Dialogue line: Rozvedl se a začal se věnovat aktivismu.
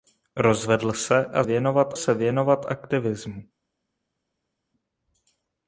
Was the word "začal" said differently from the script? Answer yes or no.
yes